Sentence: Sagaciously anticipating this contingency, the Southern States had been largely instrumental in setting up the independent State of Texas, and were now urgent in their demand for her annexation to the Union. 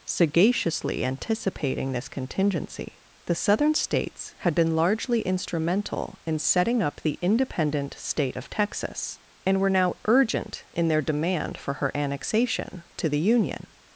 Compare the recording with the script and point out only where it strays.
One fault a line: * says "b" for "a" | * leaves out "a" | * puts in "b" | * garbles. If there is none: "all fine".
all fine